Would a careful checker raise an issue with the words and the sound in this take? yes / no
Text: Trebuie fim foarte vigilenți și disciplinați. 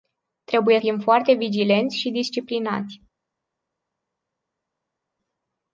no